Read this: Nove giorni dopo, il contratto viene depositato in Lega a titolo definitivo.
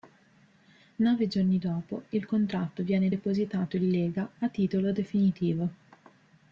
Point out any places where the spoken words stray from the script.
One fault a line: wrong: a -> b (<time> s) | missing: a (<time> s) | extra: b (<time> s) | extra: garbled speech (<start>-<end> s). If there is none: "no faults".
no faults